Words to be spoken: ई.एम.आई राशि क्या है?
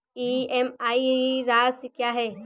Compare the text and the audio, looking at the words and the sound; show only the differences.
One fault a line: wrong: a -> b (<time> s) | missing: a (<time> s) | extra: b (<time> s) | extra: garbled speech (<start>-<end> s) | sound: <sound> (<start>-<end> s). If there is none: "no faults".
no faults